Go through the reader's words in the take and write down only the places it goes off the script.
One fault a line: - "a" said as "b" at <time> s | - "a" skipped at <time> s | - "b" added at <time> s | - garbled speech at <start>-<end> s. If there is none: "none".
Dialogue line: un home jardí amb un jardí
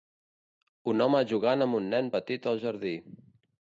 - "jardí" said as "jugant" at 1.3 s
- "nen petit al" added at 1.9 s